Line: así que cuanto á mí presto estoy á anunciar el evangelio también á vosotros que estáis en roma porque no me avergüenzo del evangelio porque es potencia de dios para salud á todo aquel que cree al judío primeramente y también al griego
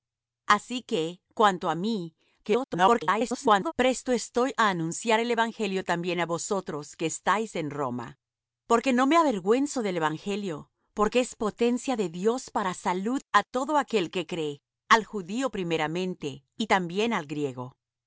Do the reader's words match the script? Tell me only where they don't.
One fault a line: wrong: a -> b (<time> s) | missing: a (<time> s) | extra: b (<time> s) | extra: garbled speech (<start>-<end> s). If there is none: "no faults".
extra: garbled speech (2.4-3.7 s)